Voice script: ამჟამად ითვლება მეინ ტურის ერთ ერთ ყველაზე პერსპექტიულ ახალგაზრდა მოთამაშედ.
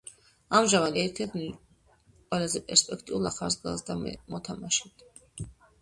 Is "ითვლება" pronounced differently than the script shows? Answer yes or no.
yes